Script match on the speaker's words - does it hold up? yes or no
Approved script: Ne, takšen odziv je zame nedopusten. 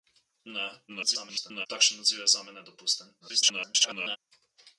no